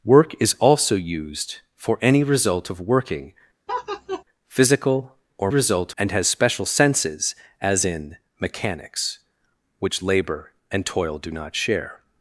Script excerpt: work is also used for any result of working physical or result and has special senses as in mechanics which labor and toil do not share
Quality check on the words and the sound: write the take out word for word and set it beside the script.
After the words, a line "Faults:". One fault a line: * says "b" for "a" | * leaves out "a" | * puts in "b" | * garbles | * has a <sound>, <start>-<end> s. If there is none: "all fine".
work is also used for any result of working physical or result and has special senses as in mechanics which labor and toil do not share
Faults:
* has a laugh, 3.7-4.2 s